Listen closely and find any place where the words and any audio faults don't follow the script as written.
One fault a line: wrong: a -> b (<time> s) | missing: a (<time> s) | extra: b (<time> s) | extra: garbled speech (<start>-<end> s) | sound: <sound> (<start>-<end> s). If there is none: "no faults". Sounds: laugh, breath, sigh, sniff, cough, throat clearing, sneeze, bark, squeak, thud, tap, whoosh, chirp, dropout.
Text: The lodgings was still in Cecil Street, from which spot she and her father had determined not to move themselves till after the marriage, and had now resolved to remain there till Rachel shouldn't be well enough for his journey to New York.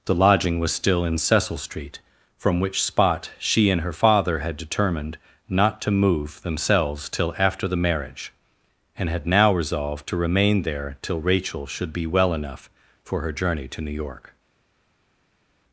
wrong: lodgings -> lodging (0.1 s)
wrong: shouldn't -> should (11.7 s)
wrong: his -> her (13.2 s)